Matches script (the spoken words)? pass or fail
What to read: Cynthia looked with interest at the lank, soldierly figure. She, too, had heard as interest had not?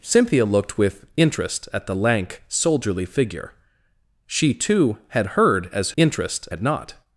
pass